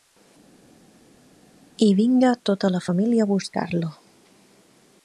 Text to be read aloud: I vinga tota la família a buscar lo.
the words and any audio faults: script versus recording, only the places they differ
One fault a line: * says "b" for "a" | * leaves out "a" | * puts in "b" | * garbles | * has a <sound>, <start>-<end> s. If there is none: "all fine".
all fine